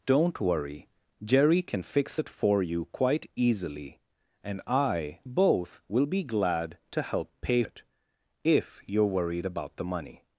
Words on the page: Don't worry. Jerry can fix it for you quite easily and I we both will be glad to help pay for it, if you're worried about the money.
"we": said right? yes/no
no